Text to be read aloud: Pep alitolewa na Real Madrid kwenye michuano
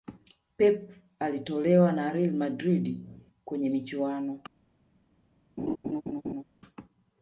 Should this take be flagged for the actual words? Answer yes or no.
no